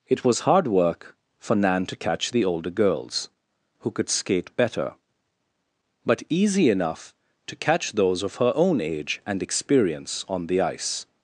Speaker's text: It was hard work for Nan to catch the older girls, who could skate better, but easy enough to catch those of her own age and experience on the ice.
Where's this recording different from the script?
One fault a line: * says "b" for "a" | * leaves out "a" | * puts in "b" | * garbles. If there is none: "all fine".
all fine